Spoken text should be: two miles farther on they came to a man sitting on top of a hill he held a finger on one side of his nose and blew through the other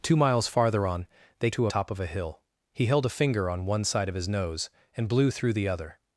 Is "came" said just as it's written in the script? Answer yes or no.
no